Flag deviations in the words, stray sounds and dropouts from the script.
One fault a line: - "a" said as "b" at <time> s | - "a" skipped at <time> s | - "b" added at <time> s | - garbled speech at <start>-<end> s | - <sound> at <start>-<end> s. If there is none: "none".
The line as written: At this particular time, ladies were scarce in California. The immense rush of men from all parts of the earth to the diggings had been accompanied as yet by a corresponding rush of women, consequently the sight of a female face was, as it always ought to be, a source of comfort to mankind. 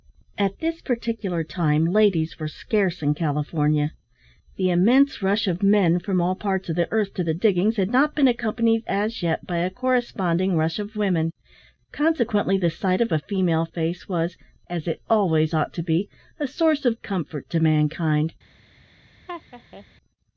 - "not" added at 7.9 s
- laugh at 19.3-19.9 s